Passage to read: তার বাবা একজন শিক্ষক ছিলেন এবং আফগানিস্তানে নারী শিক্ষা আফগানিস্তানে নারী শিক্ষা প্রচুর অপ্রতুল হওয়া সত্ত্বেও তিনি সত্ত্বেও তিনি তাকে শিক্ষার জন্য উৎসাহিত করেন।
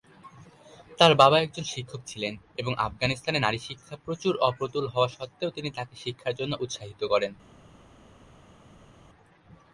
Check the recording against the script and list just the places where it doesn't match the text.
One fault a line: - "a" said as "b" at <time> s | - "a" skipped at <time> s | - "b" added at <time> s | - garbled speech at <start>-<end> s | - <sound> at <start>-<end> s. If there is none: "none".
- "আফগানিস্তানে নারী শিক্ষা" skipped at 3.9 s
- "সত্ত্বেও তিনি" skipped at 5.7 s